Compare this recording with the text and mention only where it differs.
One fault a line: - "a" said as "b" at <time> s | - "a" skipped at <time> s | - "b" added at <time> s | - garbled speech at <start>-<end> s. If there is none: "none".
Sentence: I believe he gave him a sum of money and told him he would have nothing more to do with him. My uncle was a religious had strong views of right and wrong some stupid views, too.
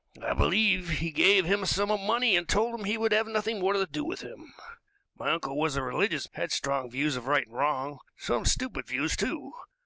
none